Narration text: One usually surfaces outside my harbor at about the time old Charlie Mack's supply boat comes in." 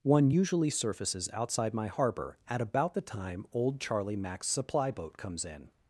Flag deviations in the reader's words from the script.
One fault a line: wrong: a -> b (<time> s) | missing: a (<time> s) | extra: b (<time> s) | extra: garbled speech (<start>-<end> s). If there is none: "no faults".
no faults